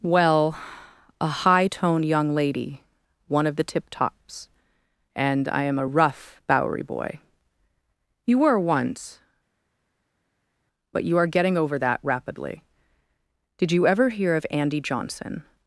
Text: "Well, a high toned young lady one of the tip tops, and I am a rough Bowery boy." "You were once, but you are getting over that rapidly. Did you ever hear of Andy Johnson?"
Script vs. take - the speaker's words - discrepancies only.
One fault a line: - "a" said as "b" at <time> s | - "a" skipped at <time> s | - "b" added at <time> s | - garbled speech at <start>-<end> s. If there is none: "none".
none